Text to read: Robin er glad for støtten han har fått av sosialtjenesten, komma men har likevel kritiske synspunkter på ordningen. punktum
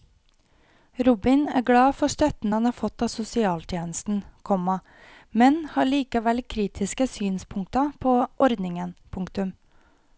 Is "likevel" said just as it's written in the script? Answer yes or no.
yes